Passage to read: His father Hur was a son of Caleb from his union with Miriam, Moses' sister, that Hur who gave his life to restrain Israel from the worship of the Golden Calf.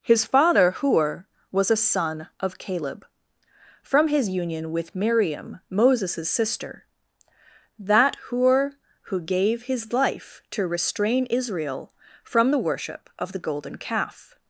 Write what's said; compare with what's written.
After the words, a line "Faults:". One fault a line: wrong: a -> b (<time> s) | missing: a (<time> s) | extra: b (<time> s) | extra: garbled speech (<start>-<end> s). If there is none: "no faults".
His father Hur was a son of Caleb from his union with Miriam, Moses' sister, that Hur who gave his life to restrain Israel from the worship of the Golden Calf.
Faults:
no faults